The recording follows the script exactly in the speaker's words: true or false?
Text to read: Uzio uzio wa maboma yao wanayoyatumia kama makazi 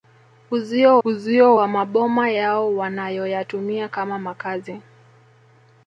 true